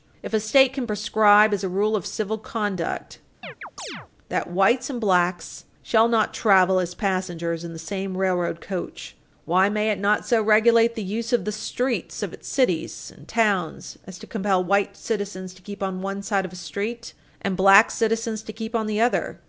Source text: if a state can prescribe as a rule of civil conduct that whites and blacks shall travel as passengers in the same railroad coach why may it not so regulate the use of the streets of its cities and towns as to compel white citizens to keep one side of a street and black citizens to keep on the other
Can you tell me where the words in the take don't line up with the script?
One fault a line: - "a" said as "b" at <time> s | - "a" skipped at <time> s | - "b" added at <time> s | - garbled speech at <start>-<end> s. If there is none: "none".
- "not" added at 6.1 s
- "on" added at 15.8 s